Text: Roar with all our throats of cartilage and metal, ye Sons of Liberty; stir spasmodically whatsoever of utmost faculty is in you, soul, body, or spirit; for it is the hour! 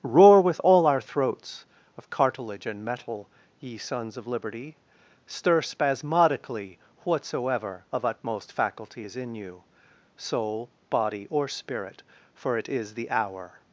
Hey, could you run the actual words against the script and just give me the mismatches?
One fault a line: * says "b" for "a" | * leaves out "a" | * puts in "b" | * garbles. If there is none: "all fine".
all fine